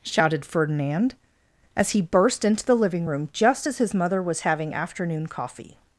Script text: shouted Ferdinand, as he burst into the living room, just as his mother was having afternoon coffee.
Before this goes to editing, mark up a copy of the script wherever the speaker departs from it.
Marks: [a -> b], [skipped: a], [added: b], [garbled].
shouted Ferdinand, as he burst into the living room, just as his mother was having afternoon coffee.